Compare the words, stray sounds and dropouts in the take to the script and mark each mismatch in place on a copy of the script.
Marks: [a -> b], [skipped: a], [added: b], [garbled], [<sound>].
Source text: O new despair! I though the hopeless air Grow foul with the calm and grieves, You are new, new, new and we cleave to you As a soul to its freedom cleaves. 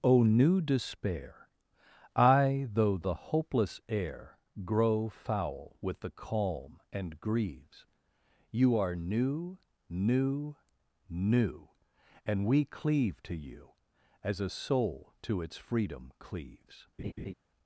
O new despair! I though the hopeless air Grow foul with the calm and grieves, You are new, new, new and we cleave to you As a soul to its freedom cleaves. [laugh]